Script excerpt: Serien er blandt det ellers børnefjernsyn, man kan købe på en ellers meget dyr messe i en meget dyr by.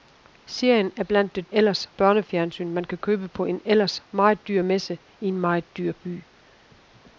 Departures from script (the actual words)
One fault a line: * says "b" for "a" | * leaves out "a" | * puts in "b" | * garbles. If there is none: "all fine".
all fine